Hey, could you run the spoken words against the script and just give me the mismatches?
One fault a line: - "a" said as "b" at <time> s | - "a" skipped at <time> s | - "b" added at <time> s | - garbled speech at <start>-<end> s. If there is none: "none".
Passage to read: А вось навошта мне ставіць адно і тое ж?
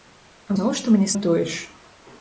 - "вось" skipped at 0.6 s
- "ставіць адно" skipped at 1.1 s